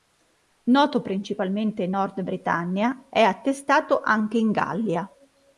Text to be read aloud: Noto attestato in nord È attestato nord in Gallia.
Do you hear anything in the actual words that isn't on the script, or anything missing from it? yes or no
yes